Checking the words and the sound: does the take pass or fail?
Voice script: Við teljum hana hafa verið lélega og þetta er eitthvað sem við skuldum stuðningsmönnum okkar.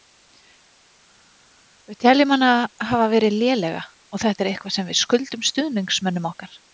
pass